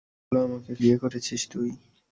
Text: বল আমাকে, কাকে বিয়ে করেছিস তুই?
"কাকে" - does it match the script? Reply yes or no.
no